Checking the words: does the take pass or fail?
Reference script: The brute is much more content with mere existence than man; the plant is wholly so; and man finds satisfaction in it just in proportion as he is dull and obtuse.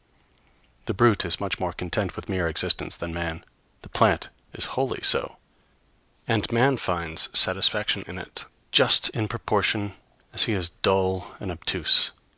pass